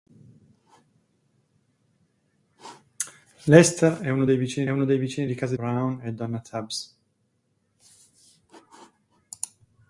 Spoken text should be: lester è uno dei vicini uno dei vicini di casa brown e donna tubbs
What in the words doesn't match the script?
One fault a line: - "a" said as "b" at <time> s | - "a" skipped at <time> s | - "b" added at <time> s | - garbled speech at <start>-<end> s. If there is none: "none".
none